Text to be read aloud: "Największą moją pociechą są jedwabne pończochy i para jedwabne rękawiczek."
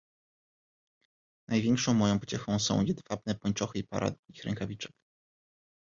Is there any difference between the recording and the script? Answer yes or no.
yes